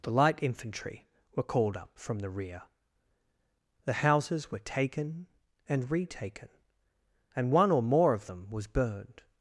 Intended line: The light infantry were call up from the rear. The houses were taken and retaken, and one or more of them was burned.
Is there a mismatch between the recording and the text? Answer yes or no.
yes